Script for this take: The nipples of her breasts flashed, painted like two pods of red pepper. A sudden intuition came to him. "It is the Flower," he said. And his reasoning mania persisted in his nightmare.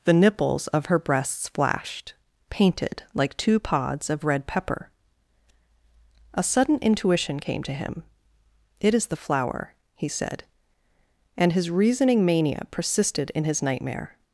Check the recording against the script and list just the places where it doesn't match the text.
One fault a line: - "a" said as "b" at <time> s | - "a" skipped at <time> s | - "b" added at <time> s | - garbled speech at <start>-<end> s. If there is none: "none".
none